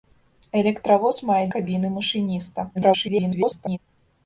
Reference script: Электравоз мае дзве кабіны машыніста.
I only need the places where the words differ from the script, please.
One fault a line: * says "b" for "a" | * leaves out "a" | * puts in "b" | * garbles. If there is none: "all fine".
* leaves out "дзве"
* garbles